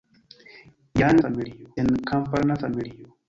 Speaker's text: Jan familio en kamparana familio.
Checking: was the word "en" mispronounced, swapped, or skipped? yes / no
no